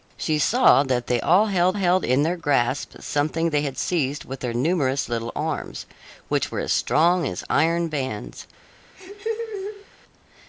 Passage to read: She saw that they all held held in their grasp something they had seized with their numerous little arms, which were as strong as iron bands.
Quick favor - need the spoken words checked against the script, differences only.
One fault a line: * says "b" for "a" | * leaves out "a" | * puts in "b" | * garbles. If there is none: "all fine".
all fine